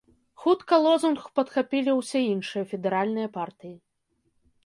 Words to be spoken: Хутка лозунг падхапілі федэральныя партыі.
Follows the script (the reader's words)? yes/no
no